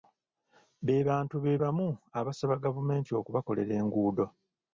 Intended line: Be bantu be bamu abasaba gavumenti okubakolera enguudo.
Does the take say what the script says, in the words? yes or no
yes